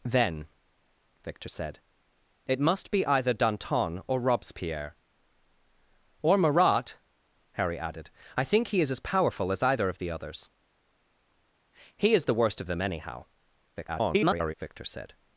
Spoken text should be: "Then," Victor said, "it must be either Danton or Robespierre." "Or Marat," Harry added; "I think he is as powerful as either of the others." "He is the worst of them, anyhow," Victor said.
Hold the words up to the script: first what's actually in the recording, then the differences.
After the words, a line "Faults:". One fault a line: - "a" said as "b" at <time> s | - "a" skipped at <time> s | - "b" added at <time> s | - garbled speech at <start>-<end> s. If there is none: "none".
"Then," Victor said, "it must be either Danton or Robespierre." "Or Marat," Harry added; "I think he is as powerful as either of the others." "He is the worst of them, anyhow," [garbled] Victor said.
Faults:
- garbled speech at 13.8-14.5 s